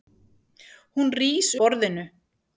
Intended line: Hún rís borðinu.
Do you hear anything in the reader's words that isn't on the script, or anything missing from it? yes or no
no